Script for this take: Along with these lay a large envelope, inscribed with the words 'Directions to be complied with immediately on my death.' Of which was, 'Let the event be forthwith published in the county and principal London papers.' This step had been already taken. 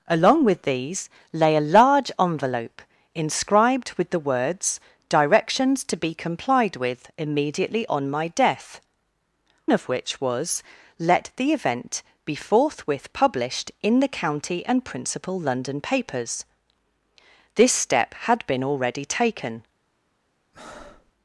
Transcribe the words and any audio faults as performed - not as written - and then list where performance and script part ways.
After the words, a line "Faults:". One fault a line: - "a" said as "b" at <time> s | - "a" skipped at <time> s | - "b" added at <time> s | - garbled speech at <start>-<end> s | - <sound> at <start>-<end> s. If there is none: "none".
Along with these lay a large envelope, inscribed with the words 'Directions to be complied with immediately on my death.' Of which was, 'Let the event be forthwith published in the county and principal London papers.' This step had been already taken.
Faults:
- breath at 20.5-21.1 s